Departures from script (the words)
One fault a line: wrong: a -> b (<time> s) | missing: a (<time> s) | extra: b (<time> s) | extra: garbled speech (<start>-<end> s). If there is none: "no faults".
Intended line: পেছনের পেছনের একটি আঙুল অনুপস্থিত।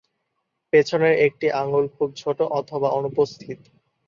missing: পেছনের (1.1 s)
extra: খুব ছোট অথবা (2.0 s)